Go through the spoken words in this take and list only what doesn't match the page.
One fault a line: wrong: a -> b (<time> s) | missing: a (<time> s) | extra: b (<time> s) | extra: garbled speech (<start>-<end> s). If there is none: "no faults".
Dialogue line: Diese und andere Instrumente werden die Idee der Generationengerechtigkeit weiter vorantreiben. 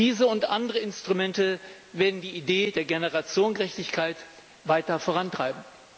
no faults